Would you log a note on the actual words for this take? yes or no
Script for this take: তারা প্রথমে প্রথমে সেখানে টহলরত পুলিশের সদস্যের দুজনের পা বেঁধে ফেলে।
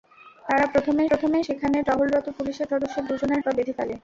no